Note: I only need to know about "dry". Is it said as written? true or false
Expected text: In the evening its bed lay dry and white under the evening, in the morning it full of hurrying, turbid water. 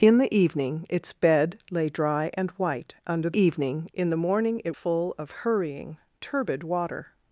true